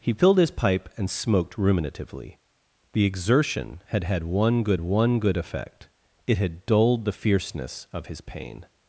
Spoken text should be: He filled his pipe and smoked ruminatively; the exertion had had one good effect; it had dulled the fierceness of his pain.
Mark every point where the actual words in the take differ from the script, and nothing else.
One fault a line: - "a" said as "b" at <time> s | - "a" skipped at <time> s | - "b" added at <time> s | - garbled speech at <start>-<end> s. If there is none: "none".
- "one good" added at 4.8 s